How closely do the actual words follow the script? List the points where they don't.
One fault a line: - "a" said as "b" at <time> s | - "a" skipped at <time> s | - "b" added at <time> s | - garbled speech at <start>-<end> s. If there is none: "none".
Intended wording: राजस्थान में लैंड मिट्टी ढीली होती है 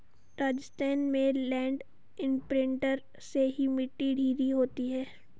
- "इंप्रिंटर से ही" added at 2.2 s